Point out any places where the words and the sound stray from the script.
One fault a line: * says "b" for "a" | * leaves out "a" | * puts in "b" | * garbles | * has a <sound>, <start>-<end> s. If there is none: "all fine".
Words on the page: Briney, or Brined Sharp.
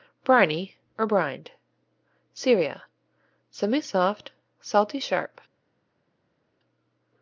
* puts in "Syria Semisoft salty"